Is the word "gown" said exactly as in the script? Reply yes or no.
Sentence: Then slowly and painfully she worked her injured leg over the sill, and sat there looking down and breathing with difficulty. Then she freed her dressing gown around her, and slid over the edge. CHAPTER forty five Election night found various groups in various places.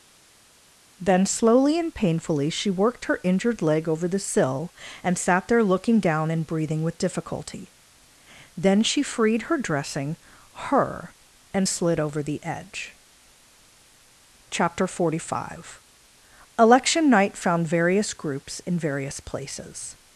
no